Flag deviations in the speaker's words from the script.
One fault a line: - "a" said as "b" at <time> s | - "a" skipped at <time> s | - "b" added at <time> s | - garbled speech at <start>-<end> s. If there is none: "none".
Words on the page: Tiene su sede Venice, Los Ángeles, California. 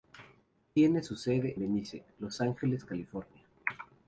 none